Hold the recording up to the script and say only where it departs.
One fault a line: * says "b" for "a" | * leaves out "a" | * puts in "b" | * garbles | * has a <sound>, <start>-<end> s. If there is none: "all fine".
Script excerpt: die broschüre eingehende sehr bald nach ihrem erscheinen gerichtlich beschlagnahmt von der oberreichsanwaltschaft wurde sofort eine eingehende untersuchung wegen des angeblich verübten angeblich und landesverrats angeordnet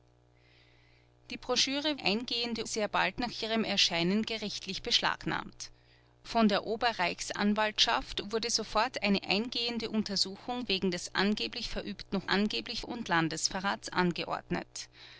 all fine